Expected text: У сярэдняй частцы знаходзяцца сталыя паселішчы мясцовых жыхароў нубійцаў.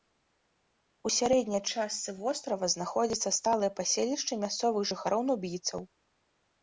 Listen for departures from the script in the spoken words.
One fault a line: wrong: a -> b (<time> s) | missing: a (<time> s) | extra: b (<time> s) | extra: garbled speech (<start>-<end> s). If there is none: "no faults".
extra: вострава (2.2 s)